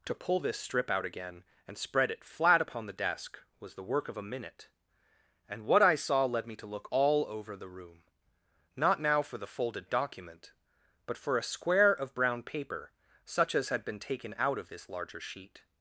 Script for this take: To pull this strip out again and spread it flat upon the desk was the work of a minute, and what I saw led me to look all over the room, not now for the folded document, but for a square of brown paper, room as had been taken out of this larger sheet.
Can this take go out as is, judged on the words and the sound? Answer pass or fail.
fail